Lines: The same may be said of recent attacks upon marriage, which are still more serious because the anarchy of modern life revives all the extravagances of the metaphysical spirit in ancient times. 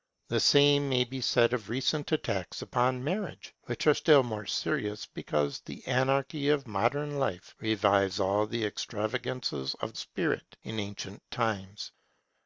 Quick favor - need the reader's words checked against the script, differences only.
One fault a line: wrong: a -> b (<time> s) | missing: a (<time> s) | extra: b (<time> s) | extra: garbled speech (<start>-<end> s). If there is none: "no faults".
missing: the metaphysical (9.9 s)